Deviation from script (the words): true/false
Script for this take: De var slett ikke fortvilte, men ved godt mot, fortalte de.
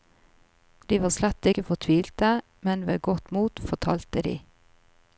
false